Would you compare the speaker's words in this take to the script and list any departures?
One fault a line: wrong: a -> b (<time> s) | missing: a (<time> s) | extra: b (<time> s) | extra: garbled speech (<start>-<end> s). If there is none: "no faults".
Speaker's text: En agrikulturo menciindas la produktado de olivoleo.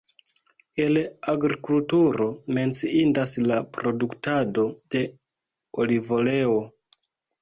wrong: En -> El (0.8 s)